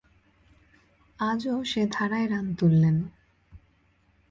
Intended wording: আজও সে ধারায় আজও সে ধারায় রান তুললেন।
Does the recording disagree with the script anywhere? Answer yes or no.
yes